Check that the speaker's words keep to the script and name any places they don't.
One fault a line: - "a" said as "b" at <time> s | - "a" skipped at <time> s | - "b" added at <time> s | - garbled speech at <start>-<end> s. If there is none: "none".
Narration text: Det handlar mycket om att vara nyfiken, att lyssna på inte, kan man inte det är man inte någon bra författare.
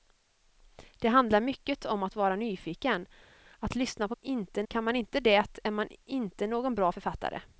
none